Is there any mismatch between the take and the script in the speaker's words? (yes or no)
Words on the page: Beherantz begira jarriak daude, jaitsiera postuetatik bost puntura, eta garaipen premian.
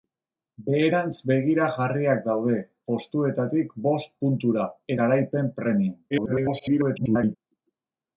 yes